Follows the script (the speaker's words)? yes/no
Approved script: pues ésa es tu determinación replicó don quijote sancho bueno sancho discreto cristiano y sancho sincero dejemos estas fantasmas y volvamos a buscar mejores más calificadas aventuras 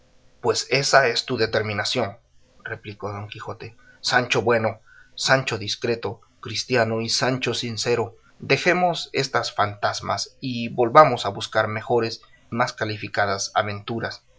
yes